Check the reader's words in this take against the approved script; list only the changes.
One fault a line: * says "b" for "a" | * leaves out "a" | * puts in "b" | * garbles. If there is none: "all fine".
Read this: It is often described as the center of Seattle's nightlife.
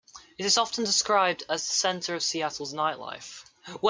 all fine